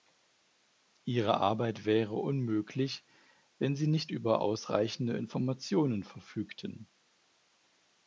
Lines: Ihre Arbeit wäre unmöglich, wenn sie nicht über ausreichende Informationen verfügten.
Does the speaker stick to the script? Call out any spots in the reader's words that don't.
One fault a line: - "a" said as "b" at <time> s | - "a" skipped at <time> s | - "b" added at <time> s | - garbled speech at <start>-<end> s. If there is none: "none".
none